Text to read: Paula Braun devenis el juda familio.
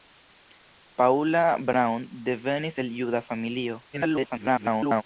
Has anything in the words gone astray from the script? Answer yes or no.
yes